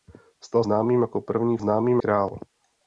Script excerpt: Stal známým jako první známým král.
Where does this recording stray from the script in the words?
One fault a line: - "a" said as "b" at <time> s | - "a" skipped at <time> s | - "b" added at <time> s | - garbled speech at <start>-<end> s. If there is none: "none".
none